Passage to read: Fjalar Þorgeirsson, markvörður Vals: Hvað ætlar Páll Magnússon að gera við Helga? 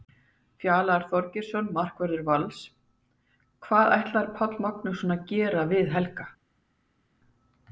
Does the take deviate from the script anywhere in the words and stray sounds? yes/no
no